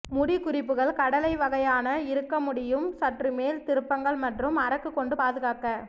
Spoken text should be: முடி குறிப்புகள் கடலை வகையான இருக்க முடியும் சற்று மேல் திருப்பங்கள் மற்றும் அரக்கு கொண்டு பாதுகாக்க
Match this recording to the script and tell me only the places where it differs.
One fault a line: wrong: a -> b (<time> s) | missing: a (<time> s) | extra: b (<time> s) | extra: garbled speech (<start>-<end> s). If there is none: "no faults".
no faults